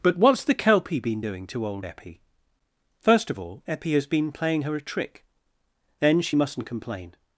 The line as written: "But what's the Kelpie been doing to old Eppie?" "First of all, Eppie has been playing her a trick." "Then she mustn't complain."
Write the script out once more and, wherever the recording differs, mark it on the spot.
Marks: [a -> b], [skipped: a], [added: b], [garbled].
"But what's the Kelpie been doing to old Eppie?" "First of all, Eppie has been playing her a trick." "Then she mustn't complain."